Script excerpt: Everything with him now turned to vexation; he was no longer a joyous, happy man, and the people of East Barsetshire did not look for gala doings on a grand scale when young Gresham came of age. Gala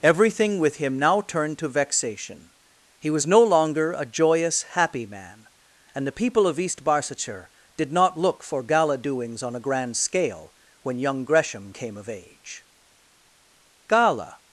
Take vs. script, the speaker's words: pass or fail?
pass